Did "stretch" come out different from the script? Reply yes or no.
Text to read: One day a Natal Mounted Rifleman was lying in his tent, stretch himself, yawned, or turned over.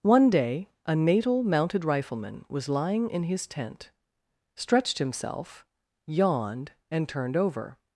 yes